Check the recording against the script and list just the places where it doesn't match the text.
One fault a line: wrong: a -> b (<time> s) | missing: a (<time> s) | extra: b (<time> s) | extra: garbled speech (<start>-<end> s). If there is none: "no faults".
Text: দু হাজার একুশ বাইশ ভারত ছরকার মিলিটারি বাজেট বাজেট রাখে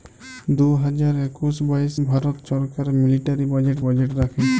no faults